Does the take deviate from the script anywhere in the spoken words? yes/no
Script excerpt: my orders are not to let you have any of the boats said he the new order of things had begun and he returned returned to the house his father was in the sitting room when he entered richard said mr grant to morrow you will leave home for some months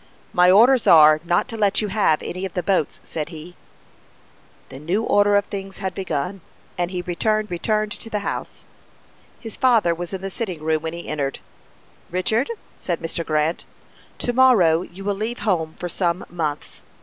no